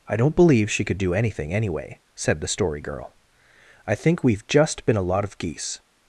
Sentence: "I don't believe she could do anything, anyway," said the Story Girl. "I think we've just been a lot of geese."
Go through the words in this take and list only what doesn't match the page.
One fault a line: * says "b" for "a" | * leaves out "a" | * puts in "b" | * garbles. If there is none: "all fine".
all fine